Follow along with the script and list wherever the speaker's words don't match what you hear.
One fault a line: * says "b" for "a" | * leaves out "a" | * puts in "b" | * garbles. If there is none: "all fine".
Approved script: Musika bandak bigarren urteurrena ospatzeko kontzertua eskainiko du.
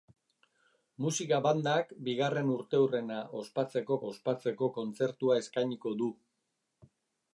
* puts in "ospatzeko"